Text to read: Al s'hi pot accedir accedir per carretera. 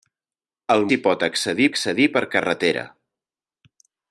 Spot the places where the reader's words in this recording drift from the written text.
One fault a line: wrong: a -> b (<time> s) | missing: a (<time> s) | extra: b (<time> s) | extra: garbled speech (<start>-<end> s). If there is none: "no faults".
no faults